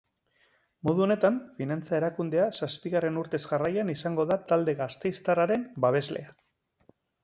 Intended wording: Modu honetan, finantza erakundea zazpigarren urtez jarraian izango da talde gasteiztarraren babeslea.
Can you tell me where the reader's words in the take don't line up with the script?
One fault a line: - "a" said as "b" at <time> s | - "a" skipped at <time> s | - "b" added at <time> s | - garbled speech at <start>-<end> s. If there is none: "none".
none